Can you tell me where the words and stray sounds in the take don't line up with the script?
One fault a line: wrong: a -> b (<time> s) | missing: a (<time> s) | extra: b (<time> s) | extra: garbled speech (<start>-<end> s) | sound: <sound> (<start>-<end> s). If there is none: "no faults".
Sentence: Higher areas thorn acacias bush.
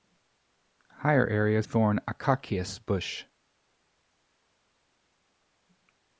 no faults